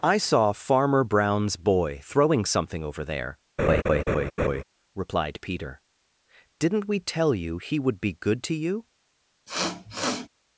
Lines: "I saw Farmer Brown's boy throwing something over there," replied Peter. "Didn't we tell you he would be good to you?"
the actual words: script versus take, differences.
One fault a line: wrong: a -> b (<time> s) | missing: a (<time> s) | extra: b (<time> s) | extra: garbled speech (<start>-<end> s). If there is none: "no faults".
no faults